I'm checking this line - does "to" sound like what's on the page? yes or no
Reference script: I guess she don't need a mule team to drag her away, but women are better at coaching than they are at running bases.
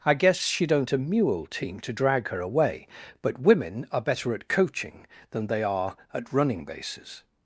yes